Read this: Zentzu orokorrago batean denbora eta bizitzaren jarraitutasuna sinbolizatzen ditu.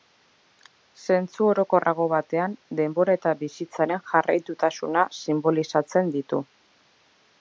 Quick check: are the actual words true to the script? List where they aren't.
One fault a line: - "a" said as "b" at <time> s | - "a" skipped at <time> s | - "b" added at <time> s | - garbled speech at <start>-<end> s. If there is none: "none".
none